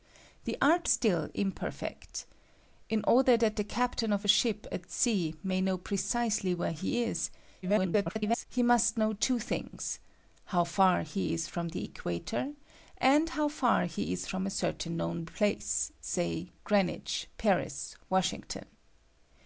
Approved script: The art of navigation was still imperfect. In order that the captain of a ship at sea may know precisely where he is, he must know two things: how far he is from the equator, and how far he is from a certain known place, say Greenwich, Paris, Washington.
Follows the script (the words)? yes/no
no